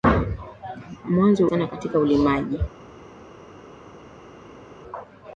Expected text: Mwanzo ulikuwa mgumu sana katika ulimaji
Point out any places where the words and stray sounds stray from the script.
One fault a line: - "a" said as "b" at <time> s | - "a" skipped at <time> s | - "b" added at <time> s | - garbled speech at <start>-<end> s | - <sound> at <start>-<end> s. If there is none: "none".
- "ulikuwa mgumu" skipped at 1.5 s